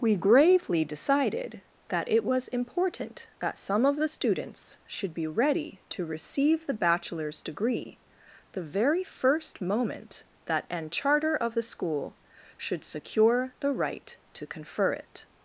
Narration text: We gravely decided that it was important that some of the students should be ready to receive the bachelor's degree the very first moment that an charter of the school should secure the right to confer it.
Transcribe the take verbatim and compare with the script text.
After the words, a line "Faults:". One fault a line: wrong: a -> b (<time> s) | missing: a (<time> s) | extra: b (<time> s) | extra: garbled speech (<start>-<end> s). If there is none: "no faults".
We gravely decided that it was important that some of the students should be ready to receive the bachelor's degree the very first moment that an charter of the school should secure the right to confer it.
Faults:
no faults